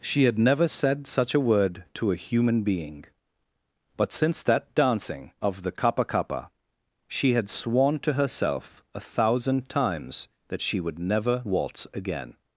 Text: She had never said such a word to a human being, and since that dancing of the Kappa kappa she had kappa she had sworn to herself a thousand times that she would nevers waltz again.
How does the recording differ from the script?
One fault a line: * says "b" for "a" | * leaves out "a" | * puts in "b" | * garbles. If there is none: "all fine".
* says "but" for "and"
* leaves out "kappa she had"
* says "never" for "nevers"